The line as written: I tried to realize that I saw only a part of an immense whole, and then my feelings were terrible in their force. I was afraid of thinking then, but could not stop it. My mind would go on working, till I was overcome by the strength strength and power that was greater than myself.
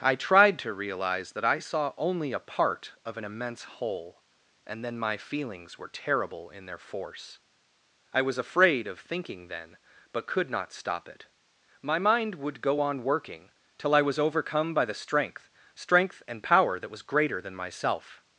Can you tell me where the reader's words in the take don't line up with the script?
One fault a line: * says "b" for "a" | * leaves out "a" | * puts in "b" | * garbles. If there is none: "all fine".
all fine